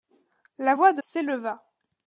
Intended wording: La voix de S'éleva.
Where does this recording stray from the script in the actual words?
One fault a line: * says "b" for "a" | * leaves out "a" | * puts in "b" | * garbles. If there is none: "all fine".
all fine